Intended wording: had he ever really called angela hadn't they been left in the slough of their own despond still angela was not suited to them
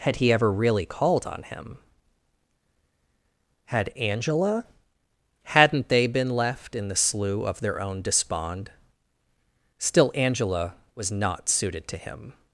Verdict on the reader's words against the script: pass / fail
fail